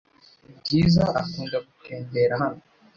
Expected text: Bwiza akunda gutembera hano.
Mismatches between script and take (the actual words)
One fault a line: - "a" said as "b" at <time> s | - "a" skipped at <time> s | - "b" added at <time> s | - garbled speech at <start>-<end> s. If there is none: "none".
none